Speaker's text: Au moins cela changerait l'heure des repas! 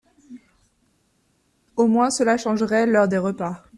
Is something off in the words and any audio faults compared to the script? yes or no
no